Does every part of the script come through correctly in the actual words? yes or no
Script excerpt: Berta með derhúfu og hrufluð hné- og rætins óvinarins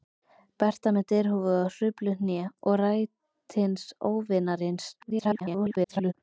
no